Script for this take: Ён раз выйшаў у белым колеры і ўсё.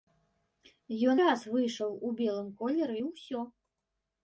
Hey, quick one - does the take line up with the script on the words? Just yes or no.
yes